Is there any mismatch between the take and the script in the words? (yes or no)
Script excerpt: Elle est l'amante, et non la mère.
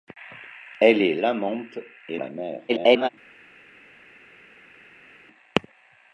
yes